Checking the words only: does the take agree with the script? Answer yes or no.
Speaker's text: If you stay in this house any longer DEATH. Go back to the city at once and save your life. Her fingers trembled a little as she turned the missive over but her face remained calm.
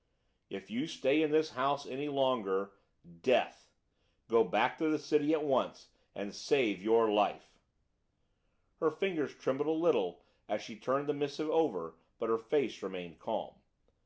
yes